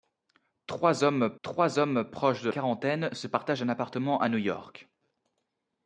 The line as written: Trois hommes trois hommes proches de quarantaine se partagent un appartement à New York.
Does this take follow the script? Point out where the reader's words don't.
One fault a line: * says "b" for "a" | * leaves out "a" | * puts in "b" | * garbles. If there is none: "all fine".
all fine